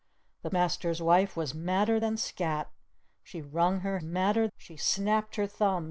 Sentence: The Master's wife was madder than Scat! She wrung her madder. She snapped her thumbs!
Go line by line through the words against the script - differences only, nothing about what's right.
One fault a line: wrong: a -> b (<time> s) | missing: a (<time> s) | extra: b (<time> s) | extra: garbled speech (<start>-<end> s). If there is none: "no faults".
no faults